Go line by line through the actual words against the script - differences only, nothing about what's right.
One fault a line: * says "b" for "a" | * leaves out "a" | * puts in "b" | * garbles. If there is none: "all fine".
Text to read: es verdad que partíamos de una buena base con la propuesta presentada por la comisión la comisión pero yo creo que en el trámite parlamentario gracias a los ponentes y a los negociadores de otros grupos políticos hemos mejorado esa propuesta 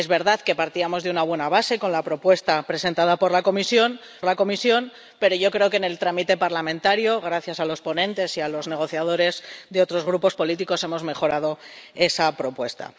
all fine